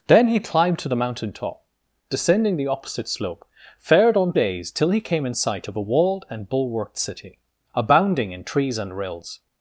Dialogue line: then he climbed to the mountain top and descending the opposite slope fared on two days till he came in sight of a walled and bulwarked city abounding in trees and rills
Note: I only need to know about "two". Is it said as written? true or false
false